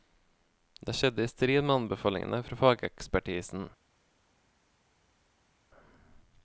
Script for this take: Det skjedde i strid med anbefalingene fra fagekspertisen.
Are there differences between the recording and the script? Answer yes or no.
no